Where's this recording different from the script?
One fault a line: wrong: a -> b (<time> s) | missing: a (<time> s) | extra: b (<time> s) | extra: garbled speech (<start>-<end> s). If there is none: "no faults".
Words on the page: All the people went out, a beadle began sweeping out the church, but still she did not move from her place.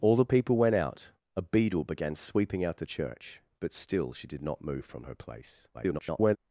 extra: garbled speech (5.7-6.4 s)